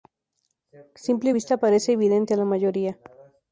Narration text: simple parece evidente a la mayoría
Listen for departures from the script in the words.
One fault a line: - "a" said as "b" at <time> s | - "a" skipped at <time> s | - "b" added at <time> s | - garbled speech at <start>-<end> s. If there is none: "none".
- "vista" added at 1.3 s